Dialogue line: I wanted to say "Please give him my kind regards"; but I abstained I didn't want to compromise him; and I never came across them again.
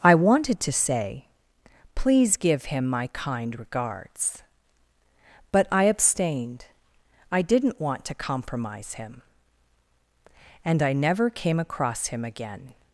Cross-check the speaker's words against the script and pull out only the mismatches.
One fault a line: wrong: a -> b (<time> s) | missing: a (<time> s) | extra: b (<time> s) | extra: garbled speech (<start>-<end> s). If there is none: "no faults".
wrong: them -> him (12.1 s)